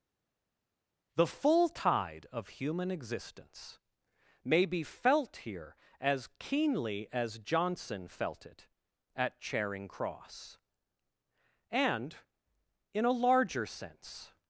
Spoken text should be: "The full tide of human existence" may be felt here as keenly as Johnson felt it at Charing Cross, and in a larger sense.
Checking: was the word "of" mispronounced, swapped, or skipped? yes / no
no